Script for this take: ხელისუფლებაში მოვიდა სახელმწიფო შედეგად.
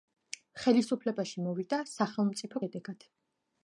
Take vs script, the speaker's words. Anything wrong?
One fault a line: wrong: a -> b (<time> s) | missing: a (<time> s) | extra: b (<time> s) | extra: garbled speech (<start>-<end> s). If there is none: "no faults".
no faults